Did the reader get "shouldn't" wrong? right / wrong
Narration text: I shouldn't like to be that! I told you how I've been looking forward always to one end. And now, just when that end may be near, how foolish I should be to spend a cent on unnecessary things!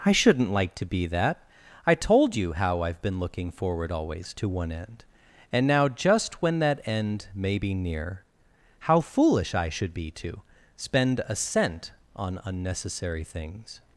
right